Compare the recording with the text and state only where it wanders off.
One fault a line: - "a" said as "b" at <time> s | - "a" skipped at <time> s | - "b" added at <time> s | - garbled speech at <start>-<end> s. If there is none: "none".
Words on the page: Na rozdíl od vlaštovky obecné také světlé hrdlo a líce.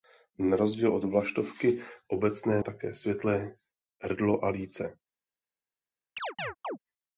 none